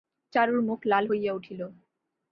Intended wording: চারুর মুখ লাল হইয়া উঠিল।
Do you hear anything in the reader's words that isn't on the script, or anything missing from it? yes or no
no